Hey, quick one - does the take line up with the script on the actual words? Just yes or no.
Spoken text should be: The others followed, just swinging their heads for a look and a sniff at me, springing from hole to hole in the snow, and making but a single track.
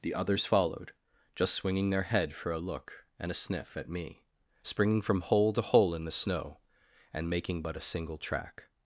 no